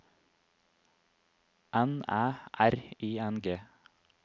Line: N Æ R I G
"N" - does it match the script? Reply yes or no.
yes